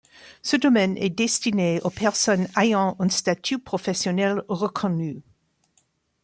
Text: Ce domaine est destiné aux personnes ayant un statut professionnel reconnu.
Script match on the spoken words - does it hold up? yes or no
yes